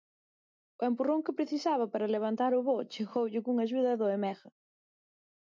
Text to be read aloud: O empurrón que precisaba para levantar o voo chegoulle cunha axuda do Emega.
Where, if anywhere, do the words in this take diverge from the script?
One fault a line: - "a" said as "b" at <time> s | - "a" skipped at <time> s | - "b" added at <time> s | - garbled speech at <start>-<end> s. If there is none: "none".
none